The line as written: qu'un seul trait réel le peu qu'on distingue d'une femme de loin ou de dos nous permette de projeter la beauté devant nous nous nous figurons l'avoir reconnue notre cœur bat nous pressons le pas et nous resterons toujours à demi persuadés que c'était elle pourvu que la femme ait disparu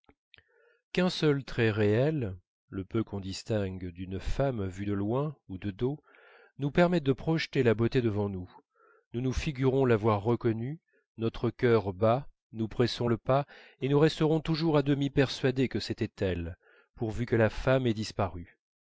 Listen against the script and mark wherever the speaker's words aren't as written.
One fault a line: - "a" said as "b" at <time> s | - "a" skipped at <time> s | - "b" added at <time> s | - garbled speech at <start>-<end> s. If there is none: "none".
- "vue" added at 4.7 s